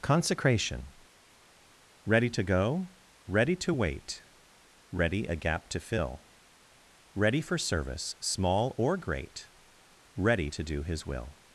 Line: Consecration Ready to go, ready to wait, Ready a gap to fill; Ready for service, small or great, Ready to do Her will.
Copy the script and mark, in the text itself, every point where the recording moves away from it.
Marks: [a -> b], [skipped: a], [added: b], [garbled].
Consecration Ready to go, ready to wait, Ready a gap to fill; Ready for service, small or great, Ready to do [Her -> His] will.